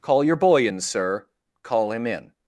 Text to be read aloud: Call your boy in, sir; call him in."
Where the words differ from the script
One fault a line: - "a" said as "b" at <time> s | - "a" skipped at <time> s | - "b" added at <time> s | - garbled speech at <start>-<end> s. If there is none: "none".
none